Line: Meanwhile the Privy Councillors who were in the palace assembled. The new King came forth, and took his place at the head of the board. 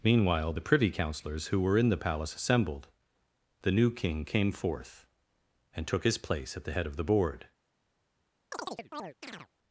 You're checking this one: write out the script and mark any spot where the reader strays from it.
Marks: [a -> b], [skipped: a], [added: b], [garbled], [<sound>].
Meanwhile the Privy Councillors who were in the palace assembled. The new King came forth, and took his place at the head of the board. [chirp]